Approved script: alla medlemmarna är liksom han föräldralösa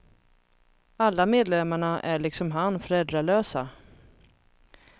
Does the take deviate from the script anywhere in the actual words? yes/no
no